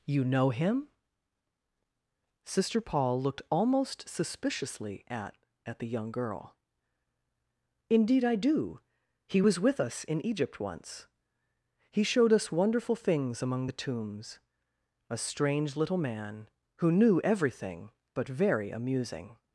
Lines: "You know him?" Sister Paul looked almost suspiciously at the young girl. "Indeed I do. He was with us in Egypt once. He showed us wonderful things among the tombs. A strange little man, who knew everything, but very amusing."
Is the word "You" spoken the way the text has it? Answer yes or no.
yes